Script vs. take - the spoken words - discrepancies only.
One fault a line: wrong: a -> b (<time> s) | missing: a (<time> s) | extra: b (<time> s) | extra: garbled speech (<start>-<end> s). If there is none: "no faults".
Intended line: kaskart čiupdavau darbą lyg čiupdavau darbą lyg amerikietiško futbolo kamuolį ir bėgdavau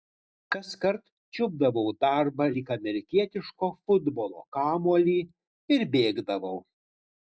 missing: čiupdavau darbą lyg (2.7 s)